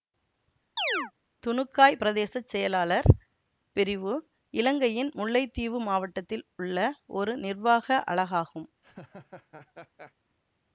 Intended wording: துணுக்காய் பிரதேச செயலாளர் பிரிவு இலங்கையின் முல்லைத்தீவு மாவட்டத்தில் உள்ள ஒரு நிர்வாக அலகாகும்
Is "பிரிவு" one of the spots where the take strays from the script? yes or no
no